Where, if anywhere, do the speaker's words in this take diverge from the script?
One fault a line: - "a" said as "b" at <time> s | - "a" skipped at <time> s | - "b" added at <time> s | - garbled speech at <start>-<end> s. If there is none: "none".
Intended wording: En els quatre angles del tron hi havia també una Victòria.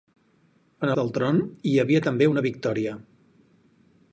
- "els quatre angles" skipped at 0.9 s